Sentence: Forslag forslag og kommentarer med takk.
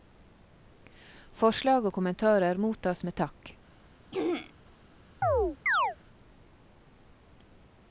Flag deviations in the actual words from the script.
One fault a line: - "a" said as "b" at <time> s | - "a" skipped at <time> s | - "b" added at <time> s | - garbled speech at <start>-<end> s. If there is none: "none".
- "forslag" skipped at 1.9 s
- "mottas" added at 2.7 s